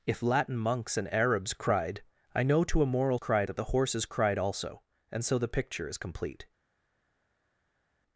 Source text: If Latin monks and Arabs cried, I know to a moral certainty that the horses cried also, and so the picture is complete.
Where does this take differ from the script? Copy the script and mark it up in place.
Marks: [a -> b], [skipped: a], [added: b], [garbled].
If Latin monks and Arabs cried, I know to a moral [certainty -> cried] that the horses cried also, and so the picture is complete.